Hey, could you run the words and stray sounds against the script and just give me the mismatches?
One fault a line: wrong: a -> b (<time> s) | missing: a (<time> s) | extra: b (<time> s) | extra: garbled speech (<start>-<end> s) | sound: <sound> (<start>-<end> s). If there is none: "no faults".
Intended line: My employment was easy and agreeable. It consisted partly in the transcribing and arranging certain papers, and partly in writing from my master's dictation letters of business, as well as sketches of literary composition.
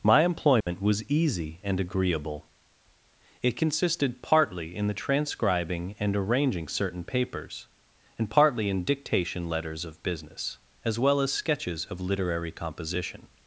sound: dropout (0.6-0.7 s)
missing: writing from my master's (8.8 s)